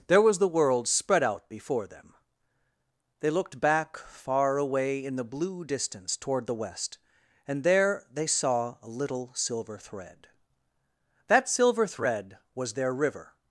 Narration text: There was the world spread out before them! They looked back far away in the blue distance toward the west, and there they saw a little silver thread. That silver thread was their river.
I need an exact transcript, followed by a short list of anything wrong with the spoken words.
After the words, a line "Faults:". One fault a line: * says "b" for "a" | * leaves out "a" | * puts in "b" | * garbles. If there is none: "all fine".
There was the world spread out before them! They looked back far away in the blue distance toward the west, and there they saw a little silver thread. That silver thread was their river.
Faults:
all fine